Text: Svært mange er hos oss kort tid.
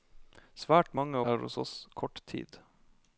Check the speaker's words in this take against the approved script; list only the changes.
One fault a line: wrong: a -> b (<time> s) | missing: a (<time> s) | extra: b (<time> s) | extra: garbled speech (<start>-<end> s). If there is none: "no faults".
no faults